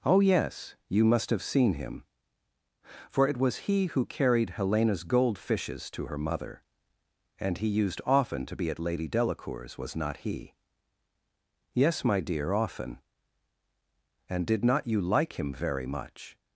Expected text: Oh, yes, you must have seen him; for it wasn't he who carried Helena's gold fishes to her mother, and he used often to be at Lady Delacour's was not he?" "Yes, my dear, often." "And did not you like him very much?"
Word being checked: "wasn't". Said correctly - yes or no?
no